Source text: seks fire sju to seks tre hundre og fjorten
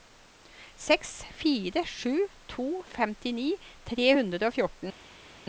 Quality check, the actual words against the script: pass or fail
fail